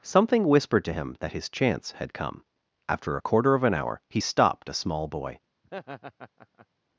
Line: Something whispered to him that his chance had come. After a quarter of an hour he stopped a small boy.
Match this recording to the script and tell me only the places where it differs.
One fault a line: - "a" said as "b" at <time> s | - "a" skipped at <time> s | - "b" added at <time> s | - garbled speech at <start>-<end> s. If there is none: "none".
none